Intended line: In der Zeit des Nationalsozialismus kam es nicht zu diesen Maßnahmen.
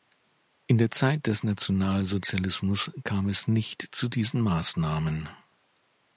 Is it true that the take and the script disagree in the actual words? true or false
false